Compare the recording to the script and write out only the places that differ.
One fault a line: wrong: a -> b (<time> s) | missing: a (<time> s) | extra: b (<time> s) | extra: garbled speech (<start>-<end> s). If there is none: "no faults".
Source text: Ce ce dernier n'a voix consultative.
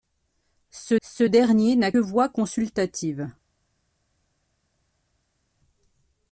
no faults